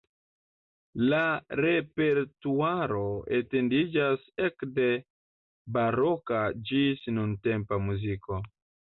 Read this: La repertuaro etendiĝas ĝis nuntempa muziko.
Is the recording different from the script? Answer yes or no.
yes